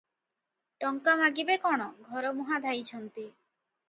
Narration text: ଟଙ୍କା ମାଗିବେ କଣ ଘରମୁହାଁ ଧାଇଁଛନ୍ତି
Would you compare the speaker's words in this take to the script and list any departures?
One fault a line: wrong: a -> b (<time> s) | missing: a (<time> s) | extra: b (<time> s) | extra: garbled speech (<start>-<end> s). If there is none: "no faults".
no faults